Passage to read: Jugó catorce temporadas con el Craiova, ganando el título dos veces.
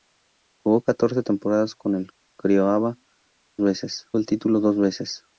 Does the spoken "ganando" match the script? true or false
false